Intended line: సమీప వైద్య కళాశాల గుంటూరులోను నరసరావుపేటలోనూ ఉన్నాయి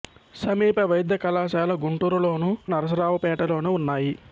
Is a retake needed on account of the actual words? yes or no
no